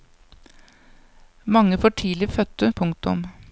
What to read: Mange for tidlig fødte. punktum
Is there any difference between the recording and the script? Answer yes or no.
no